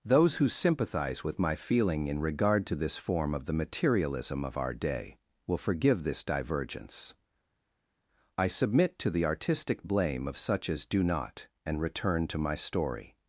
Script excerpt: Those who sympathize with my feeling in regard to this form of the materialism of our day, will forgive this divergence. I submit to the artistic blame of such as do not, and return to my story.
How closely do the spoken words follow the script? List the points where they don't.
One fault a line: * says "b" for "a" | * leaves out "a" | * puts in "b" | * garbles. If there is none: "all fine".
all fine